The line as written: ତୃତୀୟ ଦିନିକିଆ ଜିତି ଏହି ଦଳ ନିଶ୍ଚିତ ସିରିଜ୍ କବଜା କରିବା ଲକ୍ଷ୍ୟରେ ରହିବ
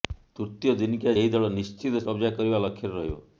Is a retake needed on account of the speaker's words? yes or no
yes